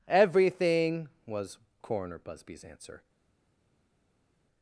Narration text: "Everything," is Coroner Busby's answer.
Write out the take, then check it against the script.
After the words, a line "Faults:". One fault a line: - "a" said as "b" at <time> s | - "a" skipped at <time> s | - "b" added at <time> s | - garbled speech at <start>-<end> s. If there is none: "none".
"Everything," was Coroner Busby's answer.
Faults:
- "is" said as "was" at 1.2 s